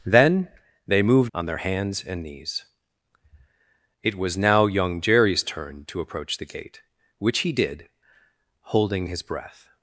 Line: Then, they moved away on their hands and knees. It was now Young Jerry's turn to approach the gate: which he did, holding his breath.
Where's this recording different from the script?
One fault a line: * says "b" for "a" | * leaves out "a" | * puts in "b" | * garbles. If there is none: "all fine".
* leaves out "away"